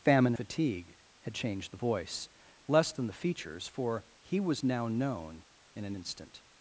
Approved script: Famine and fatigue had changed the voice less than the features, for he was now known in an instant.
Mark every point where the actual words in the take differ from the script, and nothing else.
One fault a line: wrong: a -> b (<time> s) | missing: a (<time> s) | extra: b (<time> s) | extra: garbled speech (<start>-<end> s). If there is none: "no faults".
missing: and (0.3 s)